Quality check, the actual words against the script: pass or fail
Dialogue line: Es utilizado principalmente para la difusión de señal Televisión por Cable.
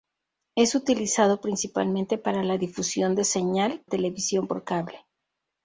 pass